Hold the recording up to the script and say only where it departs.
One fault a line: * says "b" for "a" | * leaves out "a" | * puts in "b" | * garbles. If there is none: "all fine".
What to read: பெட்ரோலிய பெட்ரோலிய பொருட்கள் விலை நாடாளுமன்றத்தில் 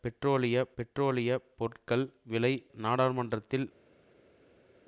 all fine